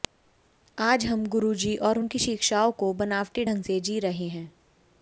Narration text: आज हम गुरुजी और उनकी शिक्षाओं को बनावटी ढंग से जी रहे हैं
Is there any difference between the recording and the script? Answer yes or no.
no